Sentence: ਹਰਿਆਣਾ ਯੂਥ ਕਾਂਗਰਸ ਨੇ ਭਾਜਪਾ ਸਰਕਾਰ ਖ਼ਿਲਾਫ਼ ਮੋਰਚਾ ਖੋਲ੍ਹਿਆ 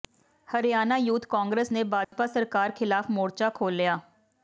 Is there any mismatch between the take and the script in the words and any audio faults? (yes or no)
yes